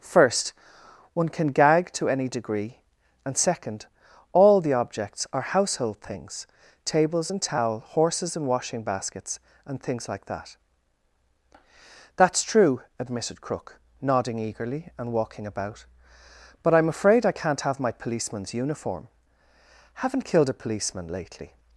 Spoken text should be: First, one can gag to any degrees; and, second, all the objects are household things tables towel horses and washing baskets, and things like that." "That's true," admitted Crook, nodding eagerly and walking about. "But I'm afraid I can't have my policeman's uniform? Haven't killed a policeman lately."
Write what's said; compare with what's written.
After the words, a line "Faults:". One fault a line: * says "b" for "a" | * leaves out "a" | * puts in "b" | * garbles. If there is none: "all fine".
First, one can gag to any degree; and, second, all the objects are household things tables and towel horses and washing baskets, and things like that." "That's true," admitted Crook, nodding eagerly and walking about. "But I'm afraid I can't have my policeman's uniform? Haven't killed a policeman lately."
Faults:
* says "degree" for "degrees"
* puts in "and"